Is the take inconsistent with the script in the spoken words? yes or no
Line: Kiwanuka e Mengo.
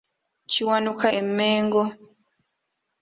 no